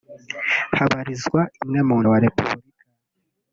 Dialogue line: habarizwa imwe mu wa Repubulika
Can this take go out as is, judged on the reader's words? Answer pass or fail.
pass